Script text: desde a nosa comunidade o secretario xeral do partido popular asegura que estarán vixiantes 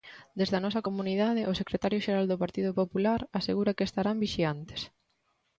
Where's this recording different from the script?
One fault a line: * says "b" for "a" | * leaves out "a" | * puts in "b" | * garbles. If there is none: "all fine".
all fine